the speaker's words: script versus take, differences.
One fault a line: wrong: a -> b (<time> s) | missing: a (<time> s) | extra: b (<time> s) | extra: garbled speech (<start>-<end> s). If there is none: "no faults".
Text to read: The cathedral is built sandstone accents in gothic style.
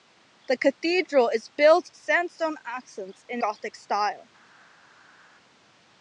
no faults